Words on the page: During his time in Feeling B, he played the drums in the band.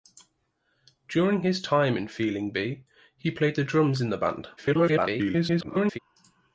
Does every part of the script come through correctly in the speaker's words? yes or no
no